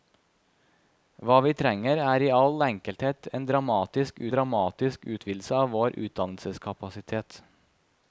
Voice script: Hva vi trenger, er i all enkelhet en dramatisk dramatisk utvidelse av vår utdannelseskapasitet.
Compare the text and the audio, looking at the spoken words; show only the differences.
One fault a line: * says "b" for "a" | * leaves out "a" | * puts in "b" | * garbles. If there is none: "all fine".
all fine